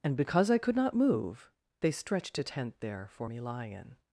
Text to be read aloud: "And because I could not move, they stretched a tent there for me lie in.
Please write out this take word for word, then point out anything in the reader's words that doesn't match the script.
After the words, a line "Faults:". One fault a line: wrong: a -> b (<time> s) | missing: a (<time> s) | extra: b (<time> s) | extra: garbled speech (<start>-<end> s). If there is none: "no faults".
"And because I could not move, they stretched a tent there for me lie in.
Faults:
no faults